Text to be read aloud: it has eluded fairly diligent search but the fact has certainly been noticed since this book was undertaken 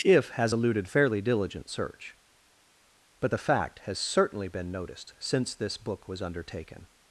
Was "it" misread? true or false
true